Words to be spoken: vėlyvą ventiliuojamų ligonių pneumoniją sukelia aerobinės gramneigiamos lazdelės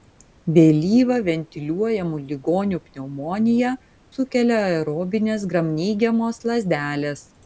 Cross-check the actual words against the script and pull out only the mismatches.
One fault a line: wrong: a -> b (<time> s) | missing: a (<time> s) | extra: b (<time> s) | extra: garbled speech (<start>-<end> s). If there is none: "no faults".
no faults